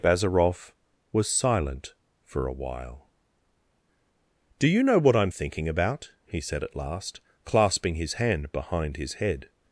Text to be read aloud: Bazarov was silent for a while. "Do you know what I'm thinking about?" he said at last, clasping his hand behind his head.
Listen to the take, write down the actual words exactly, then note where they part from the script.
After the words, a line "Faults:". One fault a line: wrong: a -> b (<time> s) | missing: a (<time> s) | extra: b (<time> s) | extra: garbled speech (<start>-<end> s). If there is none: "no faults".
Bazarov was silent for a while. "Do you know what I'm thinking about?" he said at last, clasping his hand behind his head.
Faults:
no faults